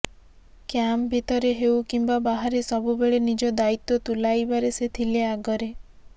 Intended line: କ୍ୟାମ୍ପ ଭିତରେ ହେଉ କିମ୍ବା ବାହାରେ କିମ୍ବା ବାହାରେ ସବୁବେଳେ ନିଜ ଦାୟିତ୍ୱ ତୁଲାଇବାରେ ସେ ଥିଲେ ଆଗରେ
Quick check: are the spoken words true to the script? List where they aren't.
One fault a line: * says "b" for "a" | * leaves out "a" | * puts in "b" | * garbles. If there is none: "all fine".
* leaves out "କିମ୍ବା ବାହାରେ"